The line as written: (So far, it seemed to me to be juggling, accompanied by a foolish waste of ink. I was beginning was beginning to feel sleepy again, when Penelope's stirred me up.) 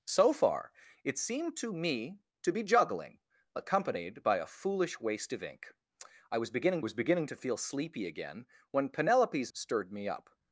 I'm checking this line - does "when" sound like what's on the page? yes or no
yes